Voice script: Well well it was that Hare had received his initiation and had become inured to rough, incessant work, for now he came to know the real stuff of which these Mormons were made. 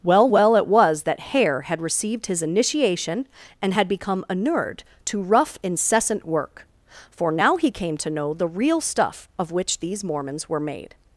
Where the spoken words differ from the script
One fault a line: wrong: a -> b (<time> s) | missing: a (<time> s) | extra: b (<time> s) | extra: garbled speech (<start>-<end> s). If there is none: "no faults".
no faults